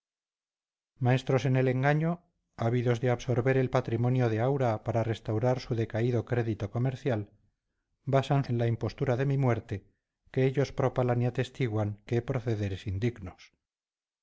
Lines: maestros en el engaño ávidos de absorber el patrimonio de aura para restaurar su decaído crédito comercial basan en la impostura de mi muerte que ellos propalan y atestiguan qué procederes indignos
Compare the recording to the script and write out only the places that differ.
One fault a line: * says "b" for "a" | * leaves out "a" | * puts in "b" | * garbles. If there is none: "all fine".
all fine